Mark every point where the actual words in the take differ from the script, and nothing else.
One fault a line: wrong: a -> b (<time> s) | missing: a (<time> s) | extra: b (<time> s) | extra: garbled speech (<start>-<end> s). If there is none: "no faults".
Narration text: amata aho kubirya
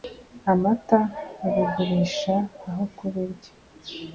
extra: babigurisha (1.4 s)